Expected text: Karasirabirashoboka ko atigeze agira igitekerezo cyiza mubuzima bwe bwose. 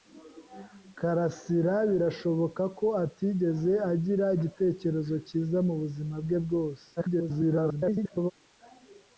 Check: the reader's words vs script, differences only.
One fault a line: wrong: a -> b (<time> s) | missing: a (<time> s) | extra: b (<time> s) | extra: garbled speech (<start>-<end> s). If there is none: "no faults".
extra: garbled speech (7.0-8.3 s)